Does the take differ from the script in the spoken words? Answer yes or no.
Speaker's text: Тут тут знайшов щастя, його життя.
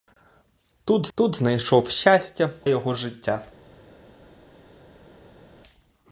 no